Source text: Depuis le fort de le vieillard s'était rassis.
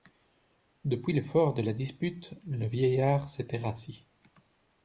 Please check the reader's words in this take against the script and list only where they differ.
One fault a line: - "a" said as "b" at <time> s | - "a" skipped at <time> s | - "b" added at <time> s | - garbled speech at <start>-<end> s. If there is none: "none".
- "la dispute" added at 1.6 s